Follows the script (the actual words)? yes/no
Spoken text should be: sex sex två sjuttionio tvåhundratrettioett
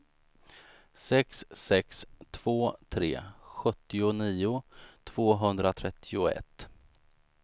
no